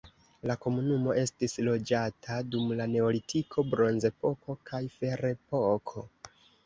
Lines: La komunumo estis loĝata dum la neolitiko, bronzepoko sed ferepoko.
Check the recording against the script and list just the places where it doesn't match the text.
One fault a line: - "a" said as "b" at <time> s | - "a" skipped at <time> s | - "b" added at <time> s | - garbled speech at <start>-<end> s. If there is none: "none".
- "sed" said as "kaj" at 4.7 s